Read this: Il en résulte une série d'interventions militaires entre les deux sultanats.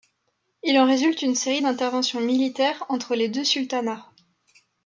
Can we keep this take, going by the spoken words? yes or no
yes